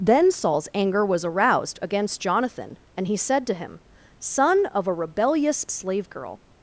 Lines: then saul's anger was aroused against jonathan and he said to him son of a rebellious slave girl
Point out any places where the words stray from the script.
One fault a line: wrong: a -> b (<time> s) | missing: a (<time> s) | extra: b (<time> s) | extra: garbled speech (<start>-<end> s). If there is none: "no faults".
no faults